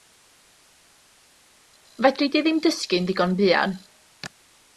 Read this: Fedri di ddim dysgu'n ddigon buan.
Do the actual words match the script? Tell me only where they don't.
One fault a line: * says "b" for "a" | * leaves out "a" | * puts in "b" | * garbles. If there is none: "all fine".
all fine